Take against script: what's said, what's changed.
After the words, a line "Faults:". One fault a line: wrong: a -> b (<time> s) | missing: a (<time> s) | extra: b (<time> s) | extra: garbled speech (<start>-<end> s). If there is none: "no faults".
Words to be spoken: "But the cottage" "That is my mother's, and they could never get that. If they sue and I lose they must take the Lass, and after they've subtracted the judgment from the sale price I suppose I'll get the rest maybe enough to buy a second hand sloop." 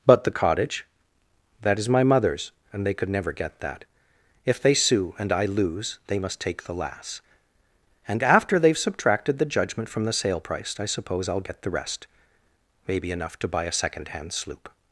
"But the cottage" "That is my mother's, and they could never get that. If they sue and I lose they must take the Lass, and after they've subtracted the judgment from the sale price I suppose I'll get the rest maybe enough to buy a second hand sloop."
Faults:
no faults